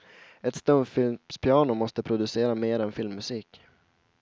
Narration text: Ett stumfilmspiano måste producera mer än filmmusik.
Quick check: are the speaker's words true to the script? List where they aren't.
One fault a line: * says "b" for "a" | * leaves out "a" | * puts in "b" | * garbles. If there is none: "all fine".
all fine